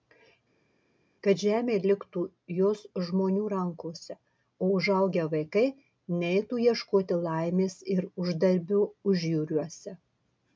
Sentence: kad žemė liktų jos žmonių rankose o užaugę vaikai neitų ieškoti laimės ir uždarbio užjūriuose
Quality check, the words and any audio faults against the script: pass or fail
pass